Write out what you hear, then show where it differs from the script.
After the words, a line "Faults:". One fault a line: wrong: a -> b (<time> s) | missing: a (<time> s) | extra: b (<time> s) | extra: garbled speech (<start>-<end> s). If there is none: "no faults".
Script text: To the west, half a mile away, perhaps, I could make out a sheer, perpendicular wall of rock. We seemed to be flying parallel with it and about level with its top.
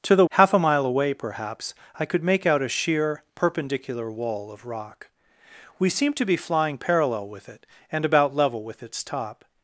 To the half a mile away, perhaps, I could make out a sheer, perpendicular wall of rock. We seemed to be flying parallel with it and about level with its top.
Faults:
missing: west (0.2 s)